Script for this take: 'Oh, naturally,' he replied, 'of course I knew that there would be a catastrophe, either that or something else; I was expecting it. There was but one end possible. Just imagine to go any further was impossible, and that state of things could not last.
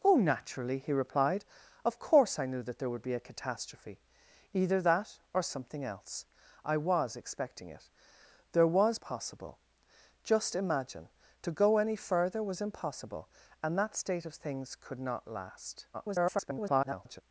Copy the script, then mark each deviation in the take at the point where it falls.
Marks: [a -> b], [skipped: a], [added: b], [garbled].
'Oh, naturally,' he replied, 'of course I knew that there would be a catastrophe, either that or something else; I was expecting it. There was [skipped: but one end] possible. Just imagine to go any further was impossible, and that state of things could not last. [garbled]